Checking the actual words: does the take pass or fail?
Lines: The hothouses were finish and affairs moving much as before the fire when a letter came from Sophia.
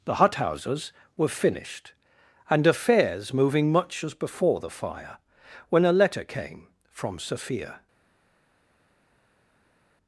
fail